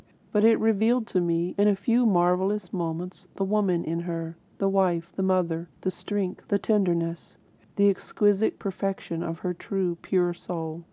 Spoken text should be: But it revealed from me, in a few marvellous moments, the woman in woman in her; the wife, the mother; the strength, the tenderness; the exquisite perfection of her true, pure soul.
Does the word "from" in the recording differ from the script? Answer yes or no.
yes